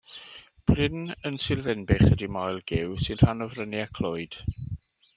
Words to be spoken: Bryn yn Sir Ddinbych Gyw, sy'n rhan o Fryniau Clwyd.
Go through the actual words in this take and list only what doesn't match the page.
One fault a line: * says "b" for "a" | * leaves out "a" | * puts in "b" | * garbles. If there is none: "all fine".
* puts in "ydy Moel"